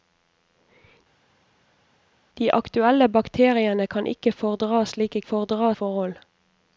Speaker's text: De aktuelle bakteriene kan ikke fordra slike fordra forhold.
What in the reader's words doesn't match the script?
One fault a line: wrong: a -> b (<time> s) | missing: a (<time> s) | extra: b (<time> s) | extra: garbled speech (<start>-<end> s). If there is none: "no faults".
no faults